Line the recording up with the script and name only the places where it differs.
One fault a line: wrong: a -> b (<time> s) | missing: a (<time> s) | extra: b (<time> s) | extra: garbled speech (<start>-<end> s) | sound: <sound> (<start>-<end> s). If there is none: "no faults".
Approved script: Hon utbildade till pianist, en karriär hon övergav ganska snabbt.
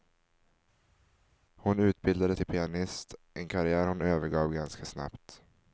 no faults